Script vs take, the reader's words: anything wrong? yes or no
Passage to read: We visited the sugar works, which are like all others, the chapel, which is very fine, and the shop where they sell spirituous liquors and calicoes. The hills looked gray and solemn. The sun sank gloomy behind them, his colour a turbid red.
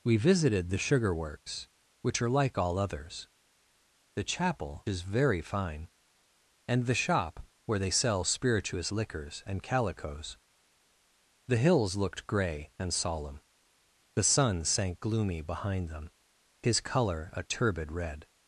yes